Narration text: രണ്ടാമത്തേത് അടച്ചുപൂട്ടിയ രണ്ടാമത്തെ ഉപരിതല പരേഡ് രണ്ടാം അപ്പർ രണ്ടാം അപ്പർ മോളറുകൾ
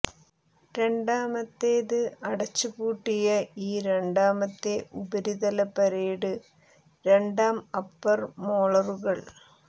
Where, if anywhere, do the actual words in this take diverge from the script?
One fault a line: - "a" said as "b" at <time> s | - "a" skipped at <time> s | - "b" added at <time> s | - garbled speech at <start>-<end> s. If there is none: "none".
- "ഈ" added at 3.6 s
- "രണ്ടാം അപ്പർ" skipped at 8.2 s